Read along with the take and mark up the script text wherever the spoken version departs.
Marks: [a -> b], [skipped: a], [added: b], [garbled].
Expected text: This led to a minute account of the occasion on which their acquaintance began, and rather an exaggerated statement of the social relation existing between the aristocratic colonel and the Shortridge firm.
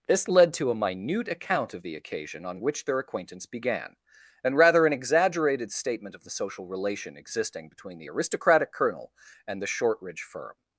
This led to a minute account of the occasion on which their acquaintance began, and rather an exaggerated statement of the social relation existing between the aristocratic colonel and the Shortridge firm.